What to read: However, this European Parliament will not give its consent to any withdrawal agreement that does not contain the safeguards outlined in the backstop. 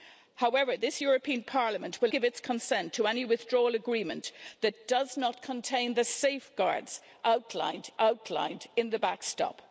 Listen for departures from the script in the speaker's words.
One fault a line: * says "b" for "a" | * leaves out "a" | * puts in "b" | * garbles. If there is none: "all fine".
* leaves out "not"
* puts in "outlined"